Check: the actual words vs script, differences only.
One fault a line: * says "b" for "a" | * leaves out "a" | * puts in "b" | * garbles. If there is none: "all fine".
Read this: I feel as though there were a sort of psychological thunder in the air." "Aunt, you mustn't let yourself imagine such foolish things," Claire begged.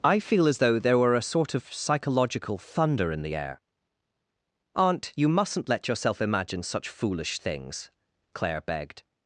all fine